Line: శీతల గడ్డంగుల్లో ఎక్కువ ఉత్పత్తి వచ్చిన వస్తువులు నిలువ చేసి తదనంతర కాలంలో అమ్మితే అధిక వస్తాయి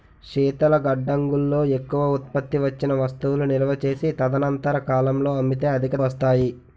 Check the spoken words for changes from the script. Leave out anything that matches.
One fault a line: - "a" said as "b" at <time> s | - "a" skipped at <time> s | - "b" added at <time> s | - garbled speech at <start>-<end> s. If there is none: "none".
none